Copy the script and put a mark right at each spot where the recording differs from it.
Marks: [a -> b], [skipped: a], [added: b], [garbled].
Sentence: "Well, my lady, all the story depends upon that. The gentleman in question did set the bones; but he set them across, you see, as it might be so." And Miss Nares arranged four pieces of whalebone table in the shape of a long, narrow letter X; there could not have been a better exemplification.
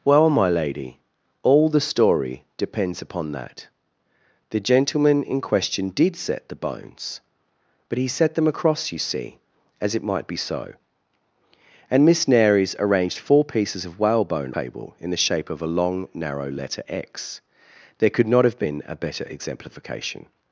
"Well, my lady, all the story depends upon that. The gentleman in question did set the bones; but he set them across, you see, as it might be so." And Miss Nares arranged four pieces of whalebone table in the shape of a long, narrow letter X; there could not have been a better exemplification.